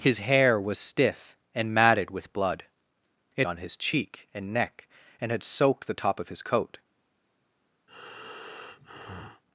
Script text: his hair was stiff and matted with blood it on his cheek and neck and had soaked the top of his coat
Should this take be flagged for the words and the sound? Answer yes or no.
yes